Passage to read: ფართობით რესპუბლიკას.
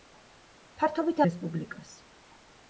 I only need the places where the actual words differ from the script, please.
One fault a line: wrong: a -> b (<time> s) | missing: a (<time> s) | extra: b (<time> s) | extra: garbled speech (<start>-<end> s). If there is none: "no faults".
no faults